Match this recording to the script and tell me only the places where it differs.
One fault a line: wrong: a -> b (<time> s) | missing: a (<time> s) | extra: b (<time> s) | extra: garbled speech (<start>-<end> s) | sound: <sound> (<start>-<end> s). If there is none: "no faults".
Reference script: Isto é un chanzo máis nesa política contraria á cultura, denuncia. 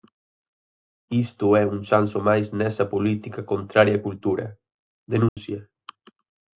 sound: dropout (5.3-5.4 s)